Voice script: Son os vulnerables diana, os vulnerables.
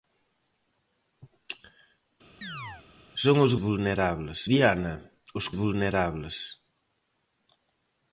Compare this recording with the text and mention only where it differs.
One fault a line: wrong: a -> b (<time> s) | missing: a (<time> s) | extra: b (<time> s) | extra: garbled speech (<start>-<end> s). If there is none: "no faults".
no faults